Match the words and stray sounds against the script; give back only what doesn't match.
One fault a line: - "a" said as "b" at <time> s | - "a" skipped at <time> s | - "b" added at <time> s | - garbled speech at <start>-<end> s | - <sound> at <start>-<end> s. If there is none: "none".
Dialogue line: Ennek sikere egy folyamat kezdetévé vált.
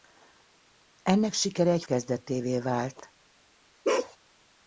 - "folyamat" skipped at 1.8 s
- bark at 3.8-4.2 s